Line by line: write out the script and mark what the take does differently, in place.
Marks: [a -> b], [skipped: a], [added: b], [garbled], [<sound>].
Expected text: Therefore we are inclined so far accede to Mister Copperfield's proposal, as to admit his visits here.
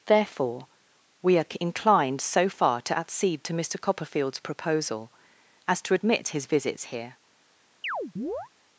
Therefore we are inclined so far [added: to] accede to Mister Copperfield's proposal, as to admit his visits here. [chirp]